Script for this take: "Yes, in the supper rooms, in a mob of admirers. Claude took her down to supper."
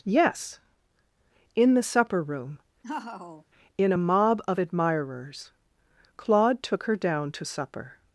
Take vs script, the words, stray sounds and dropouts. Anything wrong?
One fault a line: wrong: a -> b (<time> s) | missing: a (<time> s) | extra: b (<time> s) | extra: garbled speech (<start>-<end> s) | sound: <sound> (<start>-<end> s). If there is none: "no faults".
wrong: rooms -> room (2.2 s)
sound: laugh (2.8-3.4 s)